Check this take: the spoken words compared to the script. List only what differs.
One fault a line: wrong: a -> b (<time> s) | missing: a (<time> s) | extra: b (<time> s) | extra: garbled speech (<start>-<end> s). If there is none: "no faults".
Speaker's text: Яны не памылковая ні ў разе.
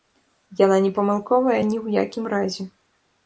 wrong: Яны -> Яна (0.6 s)
extra: якім (2.1 s)